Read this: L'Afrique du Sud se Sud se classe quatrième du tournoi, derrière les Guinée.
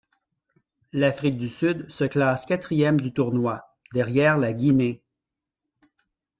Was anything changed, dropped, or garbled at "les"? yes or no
yes